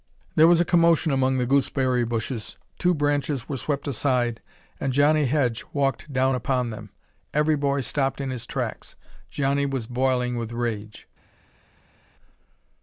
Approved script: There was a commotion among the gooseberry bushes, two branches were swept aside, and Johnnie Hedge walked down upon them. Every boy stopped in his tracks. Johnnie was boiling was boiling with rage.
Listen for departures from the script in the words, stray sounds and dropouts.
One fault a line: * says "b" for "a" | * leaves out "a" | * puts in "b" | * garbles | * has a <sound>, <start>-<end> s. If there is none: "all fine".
* leaves out "was boiling"